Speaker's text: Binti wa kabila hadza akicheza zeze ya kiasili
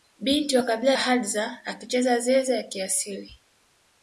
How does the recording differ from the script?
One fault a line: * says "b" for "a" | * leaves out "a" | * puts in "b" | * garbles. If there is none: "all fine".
all fine